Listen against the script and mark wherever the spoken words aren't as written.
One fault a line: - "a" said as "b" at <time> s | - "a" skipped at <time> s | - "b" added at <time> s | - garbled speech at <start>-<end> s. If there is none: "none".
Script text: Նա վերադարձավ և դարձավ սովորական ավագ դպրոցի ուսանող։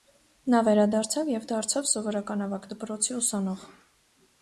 none